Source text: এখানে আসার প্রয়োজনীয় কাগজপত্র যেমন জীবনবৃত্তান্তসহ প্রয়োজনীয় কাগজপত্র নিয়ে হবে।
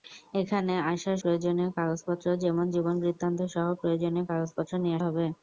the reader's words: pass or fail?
pass